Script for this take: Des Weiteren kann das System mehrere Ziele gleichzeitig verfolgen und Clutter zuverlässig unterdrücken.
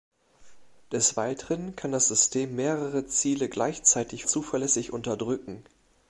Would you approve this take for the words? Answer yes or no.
no